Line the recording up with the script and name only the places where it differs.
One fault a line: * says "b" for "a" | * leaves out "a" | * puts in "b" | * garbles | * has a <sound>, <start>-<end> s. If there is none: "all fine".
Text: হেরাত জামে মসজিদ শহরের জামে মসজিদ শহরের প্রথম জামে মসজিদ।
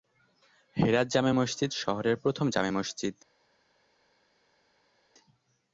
* leaves out "জামে মসজিদ শহরের"